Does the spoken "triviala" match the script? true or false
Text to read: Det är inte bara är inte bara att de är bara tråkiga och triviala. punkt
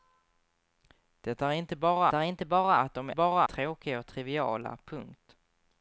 true